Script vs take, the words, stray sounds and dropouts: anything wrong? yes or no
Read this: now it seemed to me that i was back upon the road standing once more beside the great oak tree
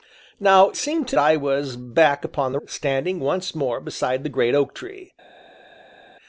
yes